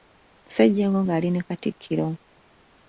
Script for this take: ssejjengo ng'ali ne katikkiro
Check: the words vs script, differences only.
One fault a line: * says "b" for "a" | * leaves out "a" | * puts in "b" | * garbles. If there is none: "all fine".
all fine